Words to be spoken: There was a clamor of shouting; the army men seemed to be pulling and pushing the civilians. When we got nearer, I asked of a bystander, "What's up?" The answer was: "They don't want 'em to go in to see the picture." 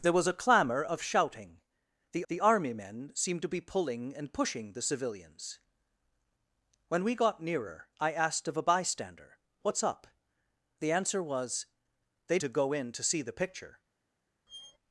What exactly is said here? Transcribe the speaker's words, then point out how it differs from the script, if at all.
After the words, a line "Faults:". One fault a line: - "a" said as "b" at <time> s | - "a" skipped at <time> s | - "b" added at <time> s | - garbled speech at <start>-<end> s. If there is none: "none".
There was a clamor of shouting; the the army men seemed to be pulling and pushing the civilians. When we got nearer, I asked of a bystander, "What's up?" The answer was: "They to go in to see the picture."
Faults:
- "the" added at 2.3 s
- "don't want em" skipped at 12.4 s